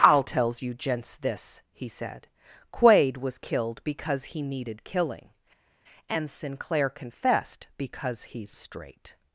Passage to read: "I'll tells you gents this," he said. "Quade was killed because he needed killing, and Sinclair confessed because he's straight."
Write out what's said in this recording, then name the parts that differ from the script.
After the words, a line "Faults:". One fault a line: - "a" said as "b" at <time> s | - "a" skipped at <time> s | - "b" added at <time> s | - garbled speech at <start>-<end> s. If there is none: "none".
"I'll tells you gents this," he said. "Quade was killed because he needed killing, and Sinclair confessed because he's straight."
Faults:
none